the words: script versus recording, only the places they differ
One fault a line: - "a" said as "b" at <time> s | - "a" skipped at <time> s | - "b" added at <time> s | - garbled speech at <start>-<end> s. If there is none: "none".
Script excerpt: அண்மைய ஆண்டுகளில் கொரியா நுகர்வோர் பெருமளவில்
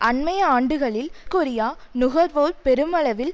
none